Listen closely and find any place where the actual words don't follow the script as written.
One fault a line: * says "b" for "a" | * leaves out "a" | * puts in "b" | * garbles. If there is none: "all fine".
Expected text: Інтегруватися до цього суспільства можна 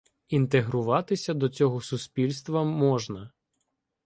all fine